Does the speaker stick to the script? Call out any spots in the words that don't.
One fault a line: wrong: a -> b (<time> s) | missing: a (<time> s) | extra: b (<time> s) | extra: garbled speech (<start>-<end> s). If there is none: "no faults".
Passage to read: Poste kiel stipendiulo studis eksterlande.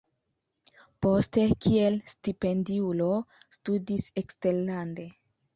no faults